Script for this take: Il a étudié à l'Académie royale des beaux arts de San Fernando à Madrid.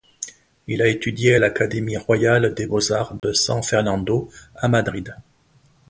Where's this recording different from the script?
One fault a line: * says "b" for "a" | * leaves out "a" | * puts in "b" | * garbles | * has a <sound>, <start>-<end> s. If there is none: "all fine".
* has a dropout, 3.2-3.2 s